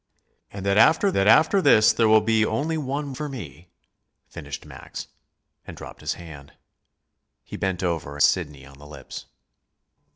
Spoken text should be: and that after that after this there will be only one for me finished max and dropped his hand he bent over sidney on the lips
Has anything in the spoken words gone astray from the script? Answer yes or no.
no